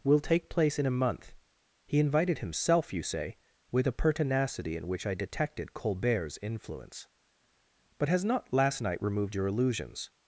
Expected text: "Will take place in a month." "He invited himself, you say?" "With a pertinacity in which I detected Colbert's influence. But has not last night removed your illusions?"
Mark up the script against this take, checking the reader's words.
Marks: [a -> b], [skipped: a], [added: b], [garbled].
"Will take place in a month." "He invited himself, you say?" "With a pertinacity in which I detected Colbert's influence. But has not last night removed your illusions?"